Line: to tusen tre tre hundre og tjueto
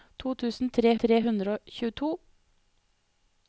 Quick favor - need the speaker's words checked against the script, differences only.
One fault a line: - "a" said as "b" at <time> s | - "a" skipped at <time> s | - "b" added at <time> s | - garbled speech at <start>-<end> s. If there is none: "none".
none